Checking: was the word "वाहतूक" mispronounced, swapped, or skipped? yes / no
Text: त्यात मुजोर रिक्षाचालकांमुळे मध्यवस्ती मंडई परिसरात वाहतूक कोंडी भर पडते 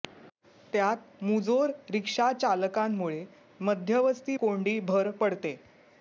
yes